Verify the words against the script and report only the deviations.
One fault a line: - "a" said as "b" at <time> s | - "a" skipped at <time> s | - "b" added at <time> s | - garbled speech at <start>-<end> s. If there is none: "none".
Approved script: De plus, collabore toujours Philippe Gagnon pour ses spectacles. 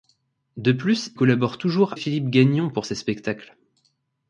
none